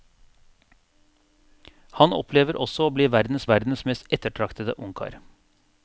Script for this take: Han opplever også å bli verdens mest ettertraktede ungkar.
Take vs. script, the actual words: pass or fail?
fail